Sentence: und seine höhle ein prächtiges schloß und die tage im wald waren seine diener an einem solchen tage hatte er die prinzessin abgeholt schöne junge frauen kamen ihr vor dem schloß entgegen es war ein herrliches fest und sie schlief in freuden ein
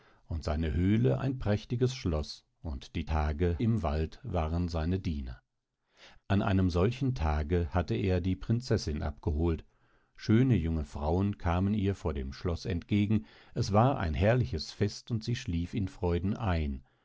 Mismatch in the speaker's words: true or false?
false